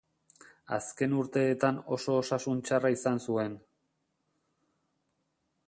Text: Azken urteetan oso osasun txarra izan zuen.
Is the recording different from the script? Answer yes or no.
no